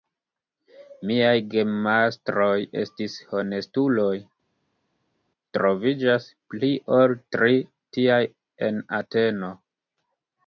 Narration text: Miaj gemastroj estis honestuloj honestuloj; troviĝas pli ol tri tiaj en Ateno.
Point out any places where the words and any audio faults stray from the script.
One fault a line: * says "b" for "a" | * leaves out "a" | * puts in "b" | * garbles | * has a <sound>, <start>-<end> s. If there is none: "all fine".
* leaves out "honestuloj"